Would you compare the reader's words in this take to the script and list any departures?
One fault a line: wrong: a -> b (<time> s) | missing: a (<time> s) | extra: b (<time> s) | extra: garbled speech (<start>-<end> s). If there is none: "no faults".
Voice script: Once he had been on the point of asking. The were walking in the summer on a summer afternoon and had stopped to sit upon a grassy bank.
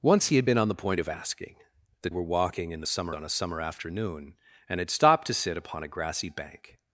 no faults